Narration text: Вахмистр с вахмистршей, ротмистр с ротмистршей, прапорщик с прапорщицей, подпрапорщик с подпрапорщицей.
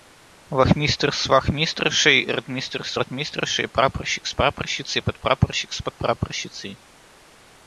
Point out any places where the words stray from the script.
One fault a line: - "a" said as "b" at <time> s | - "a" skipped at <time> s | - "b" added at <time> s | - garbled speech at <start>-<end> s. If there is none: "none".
none